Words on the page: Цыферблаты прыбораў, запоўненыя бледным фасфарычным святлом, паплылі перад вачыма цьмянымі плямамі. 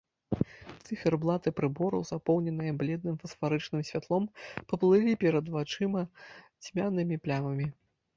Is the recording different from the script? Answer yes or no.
no